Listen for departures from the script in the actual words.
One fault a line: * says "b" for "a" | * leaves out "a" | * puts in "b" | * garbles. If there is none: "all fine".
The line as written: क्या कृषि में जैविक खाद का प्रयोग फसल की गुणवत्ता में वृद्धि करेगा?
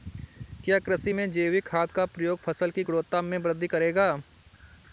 all fine